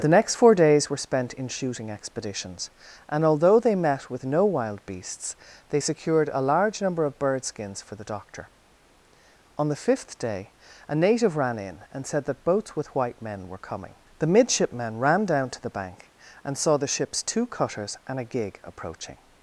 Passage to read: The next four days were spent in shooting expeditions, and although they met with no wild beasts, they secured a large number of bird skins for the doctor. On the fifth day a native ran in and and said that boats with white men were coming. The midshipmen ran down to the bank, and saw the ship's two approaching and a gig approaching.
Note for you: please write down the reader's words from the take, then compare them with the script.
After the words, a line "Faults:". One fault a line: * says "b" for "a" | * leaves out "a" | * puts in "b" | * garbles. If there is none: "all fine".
The next four days were spent in shooting expeditions, and although they met with no wild beasts, they secured a large number of bird skins for the doctor. On the fifth day a native ran in and said that boats with white men were coming. The midshipmen ran down to the bank, and saw the ship's two cutters and a gig approaching.
Faults:
* leaves out "and"
* says "cutters" for "approaching"